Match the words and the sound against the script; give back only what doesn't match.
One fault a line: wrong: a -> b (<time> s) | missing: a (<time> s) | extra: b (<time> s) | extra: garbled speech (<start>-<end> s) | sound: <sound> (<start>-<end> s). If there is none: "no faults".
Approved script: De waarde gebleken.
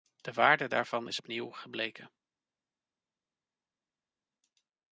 extra: daarvan is opnieuw (0.7 s)